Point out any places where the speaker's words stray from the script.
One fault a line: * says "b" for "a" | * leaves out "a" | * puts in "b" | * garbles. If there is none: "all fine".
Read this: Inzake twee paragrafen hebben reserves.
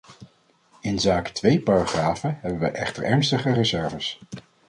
* puts in "wij echter ernstige"